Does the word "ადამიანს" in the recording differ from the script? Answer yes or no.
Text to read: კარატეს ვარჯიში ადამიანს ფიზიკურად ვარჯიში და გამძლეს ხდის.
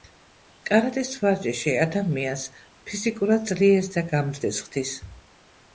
no